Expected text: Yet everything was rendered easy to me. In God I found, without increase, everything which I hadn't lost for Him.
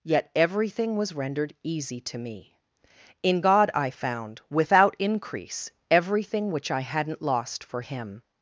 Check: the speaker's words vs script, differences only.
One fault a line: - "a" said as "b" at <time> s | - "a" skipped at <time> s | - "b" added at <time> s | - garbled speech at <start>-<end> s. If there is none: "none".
none